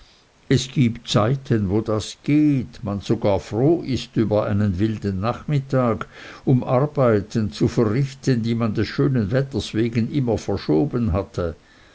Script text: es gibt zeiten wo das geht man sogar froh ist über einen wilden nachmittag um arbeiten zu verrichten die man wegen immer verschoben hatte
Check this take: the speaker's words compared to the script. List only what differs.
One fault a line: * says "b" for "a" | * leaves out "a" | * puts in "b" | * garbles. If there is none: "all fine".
* puts in "des schönen wetters"